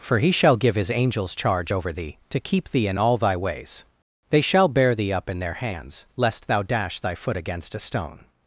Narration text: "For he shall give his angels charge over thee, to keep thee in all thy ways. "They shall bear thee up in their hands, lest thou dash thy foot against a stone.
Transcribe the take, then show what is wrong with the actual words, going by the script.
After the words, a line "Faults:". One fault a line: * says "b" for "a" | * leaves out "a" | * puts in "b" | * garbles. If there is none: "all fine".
"For he shall give his angels charge over thee, to keep thee in all thy ways. "They shall bear thee up in their hands, lest thou dash thy foot against a stone.
Faults:
all fine